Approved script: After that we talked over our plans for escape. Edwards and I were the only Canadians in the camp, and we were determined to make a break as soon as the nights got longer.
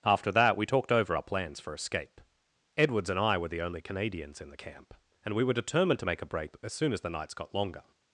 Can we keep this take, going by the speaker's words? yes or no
yes